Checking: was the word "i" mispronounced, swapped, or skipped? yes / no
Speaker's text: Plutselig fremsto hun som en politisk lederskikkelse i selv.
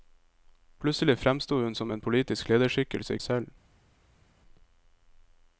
no